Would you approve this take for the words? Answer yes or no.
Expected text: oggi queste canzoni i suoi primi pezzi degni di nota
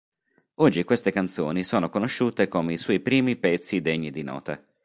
no